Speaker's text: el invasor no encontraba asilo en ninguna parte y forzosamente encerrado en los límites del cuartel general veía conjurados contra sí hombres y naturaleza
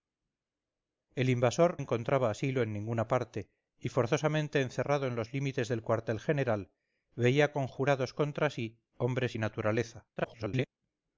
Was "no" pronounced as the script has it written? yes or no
no